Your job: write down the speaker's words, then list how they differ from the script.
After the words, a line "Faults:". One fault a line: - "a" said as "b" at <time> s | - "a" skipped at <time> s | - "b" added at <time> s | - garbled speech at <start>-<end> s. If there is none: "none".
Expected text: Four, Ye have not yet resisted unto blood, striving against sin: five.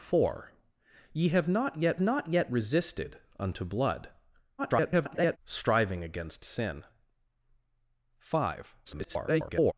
Four, Ye have not yet not yet resisted unto blood, [garbled] striving against sin: five. [garbled]
Faults:
- "not yet" added at 2.0 s
- garbled speech at 4.6-5.4 s
- garbled speech at 8.8-9.7 s